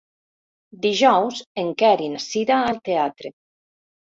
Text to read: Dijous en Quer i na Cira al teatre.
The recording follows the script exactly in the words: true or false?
true